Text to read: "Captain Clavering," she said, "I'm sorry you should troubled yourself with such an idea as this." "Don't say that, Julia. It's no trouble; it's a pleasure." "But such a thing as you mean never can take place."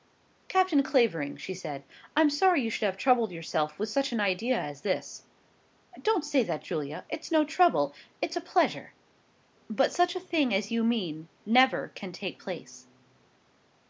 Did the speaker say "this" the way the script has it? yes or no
yes